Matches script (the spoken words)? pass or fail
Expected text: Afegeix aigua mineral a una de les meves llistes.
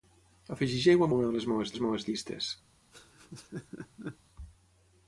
fail